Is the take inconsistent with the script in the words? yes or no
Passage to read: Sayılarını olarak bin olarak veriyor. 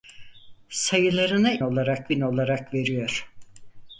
no